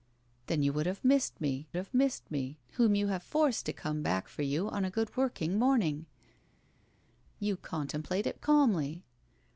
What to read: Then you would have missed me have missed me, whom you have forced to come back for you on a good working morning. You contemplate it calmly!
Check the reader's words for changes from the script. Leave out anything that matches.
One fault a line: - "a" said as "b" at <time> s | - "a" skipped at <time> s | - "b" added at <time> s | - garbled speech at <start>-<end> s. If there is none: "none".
none